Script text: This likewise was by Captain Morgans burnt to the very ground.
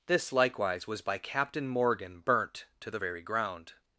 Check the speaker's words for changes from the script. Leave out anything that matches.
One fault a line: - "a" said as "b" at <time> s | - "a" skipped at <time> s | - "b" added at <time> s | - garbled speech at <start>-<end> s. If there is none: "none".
- "Morgans" said as "Morgan" at 1.7 s